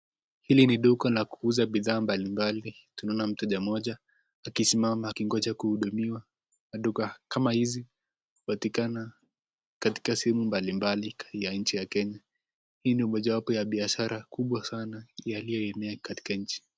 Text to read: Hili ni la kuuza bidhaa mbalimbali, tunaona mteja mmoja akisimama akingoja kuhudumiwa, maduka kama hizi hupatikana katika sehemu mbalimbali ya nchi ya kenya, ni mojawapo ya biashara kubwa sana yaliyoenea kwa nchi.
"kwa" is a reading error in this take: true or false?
true